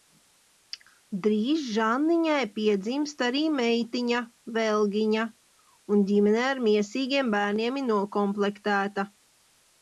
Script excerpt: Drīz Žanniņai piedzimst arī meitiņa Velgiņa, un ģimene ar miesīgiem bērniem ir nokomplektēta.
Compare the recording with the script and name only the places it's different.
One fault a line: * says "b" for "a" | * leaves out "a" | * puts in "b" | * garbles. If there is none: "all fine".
all fine